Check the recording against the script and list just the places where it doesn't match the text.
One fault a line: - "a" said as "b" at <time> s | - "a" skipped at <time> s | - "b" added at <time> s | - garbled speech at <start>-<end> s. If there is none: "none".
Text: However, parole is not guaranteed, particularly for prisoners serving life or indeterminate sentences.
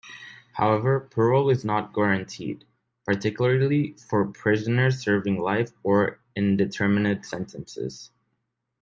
none